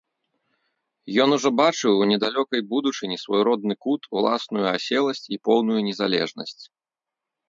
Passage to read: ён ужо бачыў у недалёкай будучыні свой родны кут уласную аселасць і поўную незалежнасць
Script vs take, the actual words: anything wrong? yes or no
no